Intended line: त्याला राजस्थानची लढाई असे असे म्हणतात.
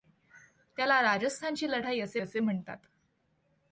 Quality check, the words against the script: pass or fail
pass